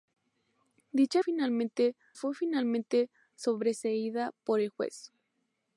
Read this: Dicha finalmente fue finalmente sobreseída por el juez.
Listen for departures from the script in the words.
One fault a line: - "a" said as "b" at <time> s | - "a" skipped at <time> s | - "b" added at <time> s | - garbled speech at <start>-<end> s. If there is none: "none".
none